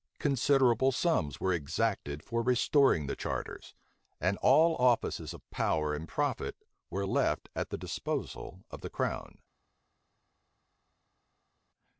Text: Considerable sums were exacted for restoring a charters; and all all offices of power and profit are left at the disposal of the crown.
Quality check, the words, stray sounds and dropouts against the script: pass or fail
fail